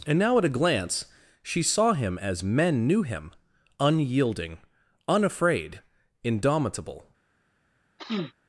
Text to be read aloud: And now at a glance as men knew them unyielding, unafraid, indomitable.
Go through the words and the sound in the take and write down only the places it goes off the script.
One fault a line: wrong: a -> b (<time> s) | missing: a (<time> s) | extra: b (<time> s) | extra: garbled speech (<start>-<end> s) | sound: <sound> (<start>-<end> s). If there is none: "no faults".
extra: she saw him (1.4 s)
wrong: them -> him (3.0 s)
sound: sniff (8.0-8.3 s)